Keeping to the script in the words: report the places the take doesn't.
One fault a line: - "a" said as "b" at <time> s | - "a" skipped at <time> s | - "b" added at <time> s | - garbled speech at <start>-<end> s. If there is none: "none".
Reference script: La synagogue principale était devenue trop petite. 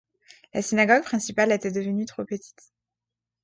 none